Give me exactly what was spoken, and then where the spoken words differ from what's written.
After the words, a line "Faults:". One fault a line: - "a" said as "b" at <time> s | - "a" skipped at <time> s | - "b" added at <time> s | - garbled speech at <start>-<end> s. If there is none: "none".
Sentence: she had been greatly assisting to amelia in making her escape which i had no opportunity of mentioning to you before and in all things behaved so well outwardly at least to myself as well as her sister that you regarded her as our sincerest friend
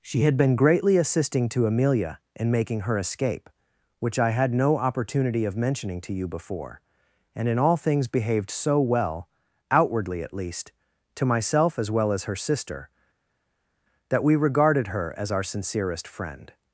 she had been greatly assisting to amelia in making her escape which i had no opportunity of mentioning to you before and in all things behaved so well outwardly at least to myself as well as her sister that we regarded her as our sincerest friend
Faults:
- "you" said as "we" at 14.2 s